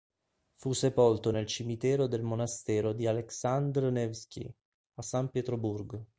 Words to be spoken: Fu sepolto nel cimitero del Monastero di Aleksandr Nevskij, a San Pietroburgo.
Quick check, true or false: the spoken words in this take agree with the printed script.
true